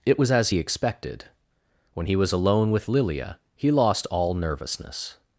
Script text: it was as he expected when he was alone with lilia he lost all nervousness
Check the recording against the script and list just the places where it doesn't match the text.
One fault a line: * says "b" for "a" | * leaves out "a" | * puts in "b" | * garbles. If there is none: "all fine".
all fine